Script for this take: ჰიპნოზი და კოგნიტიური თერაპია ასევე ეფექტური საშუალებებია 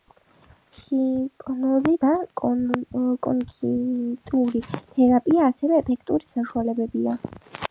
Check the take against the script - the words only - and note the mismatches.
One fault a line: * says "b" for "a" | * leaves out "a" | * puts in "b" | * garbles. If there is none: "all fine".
all fine